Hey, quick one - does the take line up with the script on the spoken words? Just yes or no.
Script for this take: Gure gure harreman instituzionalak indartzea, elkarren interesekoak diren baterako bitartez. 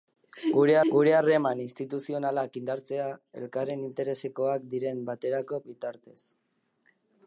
yes